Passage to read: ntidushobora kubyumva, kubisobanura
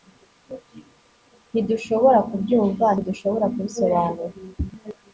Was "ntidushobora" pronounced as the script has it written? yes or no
yes